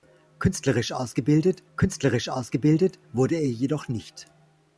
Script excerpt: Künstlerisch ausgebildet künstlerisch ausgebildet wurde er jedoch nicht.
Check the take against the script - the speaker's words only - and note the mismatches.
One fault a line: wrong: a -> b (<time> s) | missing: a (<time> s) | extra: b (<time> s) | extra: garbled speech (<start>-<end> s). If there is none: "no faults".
no faults